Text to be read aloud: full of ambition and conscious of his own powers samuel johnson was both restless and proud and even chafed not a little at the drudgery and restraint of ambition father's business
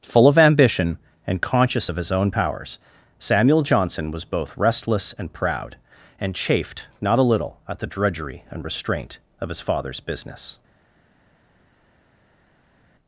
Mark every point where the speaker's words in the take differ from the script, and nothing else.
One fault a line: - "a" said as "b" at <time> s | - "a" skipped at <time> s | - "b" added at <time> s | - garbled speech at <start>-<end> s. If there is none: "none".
- "even" skipped at 6.3 s
- "ambition" said as "his" at 9.5 s